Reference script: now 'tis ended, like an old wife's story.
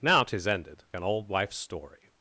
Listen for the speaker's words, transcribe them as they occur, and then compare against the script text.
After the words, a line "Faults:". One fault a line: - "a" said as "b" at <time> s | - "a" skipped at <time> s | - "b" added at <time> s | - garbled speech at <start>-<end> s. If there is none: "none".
now 'tis ended, an old wife's story.
Faults:
- "like" skipped at 0.8 s